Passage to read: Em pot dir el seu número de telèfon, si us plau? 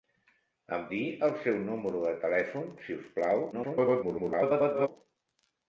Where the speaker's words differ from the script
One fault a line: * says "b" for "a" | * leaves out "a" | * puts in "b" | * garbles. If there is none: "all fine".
* leaves out "pot"
* garbles